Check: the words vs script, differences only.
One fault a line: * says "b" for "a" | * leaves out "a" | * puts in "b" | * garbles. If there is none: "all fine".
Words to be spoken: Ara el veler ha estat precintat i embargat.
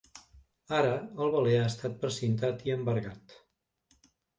all fine